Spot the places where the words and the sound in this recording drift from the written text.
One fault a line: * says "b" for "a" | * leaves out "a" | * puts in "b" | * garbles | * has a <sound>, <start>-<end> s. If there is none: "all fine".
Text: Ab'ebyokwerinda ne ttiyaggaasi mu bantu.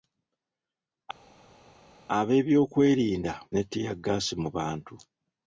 all fine